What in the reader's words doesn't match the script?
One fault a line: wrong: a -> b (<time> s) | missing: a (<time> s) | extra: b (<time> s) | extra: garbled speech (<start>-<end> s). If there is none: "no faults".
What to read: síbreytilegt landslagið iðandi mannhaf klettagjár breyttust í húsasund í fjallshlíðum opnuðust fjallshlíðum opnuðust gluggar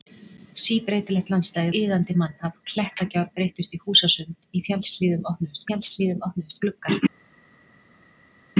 no faults